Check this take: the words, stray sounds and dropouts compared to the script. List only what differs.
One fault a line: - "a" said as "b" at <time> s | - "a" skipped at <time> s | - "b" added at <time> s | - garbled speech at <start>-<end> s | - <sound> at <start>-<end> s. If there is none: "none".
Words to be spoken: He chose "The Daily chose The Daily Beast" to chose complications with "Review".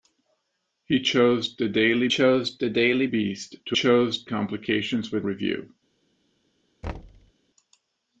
- thud at 6.8-7.3 s